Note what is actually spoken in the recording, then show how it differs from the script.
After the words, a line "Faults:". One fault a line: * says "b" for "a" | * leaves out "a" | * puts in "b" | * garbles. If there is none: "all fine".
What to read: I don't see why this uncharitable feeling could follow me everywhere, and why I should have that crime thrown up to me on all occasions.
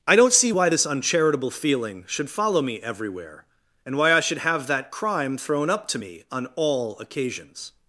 I don't see why this uncharitable feeling should follow me everywhere, and why I should have that crime thrown up to me on all occasions.
Faults:
* says "should" for "could"